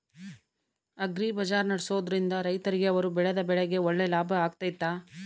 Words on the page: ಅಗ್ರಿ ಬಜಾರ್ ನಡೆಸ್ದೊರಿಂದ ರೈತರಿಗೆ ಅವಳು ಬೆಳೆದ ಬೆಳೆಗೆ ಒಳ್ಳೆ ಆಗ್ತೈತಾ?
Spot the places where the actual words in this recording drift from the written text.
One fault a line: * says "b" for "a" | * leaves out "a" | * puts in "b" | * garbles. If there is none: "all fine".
* says "ಅವರು" for "ಅವಳು"
* puts in "ಲಾಭ"